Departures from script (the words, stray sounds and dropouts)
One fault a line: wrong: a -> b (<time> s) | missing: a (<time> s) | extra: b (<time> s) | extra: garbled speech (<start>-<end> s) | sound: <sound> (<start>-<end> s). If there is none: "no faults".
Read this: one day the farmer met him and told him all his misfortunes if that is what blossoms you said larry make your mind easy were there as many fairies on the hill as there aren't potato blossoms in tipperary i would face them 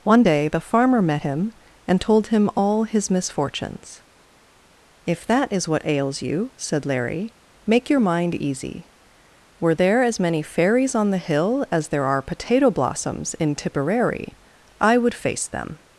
wrong: blossoms -> ails (5.8 s)
wrong: aren't -> are (12.1 s)